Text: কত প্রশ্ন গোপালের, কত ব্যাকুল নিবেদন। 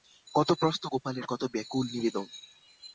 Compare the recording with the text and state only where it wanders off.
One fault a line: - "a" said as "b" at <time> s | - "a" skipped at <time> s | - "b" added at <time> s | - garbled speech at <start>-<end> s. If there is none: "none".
none